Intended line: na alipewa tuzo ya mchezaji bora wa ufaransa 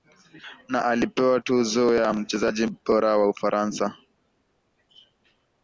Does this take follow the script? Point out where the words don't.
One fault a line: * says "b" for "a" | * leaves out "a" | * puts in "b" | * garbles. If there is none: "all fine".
all fine